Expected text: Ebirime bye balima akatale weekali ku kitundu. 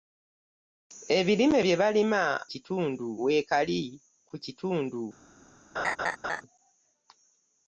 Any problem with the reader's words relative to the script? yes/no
yes